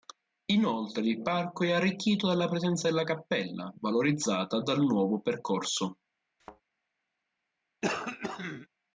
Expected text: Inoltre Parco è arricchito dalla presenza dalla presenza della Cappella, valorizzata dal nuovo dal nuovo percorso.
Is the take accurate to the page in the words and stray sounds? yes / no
no